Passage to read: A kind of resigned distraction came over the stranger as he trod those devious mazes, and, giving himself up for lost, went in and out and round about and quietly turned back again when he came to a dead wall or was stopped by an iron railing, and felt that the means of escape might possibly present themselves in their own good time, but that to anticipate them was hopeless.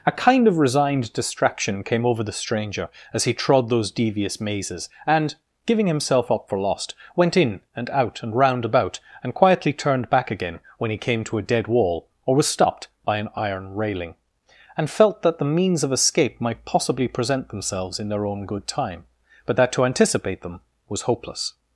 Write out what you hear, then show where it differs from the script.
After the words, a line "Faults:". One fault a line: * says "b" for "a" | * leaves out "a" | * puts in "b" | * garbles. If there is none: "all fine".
A kind of resigned distraction came over the stranger as he trod those devious mazes, and, giving himself up for lost, went in and out and round about and quietly turned back again when he came to a dead wall or was stopped by an iron railing, and felt that the means of escape might possibly present themselves in their own good time, but that to anticipate them was hopeless.
Faults:
all fine